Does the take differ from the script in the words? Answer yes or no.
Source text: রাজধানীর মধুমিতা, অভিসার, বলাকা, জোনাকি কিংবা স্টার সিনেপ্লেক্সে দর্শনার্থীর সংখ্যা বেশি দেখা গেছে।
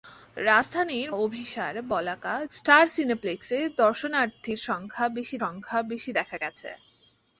yes